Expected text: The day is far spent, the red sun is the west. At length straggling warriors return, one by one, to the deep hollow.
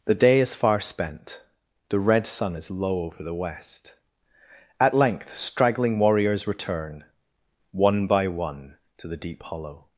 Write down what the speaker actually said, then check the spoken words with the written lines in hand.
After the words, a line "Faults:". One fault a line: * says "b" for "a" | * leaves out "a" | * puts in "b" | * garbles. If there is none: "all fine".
The day is far spent, the red sun is low over the west. At length straggling warriors return, one by one, to the deep hollow.
Faults:
* puts in "low over"